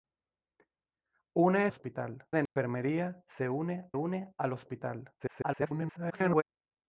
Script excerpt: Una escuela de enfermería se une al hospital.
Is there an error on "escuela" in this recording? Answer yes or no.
yes